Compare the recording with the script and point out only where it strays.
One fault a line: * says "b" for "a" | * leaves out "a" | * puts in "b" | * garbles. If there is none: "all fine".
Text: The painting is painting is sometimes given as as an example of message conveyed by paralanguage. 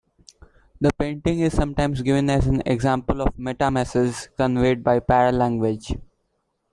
* leaves out "painting is"
* leaves out "as"
* puts in "meta"